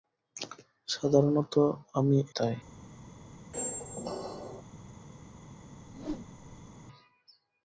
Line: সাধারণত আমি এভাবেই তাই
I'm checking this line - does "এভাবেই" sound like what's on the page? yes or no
no